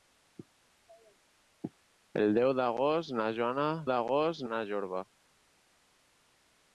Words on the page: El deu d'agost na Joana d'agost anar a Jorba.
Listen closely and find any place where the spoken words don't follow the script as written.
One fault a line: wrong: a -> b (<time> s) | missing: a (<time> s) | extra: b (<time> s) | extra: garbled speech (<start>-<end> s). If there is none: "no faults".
no faults